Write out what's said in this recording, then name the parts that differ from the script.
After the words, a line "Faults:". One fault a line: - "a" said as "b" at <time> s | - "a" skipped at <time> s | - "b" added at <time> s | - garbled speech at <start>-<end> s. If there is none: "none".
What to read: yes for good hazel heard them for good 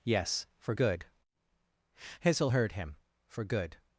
yes for good hazel heard him for good
Faults:
- "them" said as "him" at 2.7 s